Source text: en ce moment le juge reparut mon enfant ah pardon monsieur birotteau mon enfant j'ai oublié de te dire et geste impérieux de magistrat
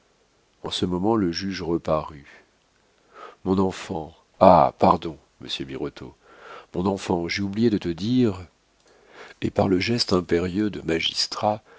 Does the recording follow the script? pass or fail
fail